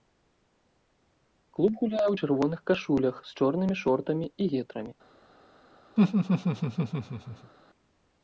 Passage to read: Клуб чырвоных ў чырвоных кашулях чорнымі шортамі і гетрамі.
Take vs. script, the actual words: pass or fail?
fail